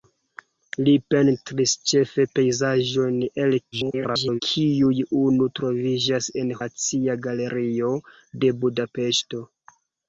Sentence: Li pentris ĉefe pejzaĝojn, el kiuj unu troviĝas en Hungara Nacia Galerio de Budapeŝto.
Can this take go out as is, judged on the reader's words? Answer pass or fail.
fail